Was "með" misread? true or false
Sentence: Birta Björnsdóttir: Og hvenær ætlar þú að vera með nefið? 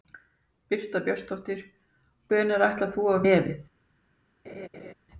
true